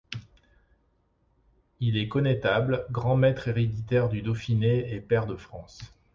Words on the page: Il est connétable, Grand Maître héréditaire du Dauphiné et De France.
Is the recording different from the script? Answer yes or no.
yes